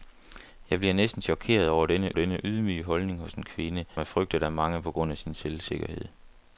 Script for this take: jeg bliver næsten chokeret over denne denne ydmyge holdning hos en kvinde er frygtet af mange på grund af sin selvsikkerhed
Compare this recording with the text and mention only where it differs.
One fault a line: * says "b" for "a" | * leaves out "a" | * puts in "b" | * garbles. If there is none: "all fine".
all fine